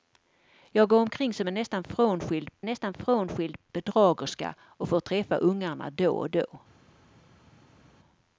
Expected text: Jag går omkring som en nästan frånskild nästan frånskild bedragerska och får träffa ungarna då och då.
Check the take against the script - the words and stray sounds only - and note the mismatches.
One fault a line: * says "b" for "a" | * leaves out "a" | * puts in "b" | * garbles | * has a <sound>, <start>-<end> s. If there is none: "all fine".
all fine